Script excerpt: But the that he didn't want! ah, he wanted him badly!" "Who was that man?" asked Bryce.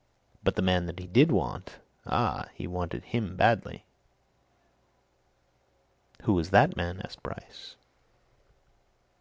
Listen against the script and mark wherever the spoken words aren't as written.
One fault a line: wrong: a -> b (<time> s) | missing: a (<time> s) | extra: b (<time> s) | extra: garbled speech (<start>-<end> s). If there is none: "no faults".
extra: man (0.6 s)
wrong: didn't -> did (1.0 s)